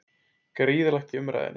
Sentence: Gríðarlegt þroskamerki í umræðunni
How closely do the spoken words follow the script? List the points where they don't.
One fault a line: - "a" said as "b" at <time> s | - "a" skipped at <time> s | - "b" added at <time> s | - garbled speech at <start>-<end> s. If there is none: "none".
- "þroskamerki" skipped at 1.1 s